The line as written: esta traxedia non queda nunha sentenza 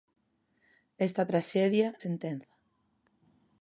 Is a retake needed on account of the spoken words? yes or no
yes